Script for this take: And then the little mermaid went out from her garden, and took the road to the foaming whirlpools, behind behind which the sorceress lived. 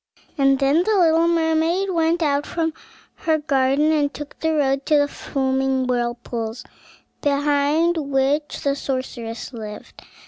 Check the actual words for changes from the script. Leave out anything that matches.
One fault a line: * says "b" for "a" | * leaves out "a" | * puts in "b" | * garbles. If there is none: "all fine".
* leaves out "behind"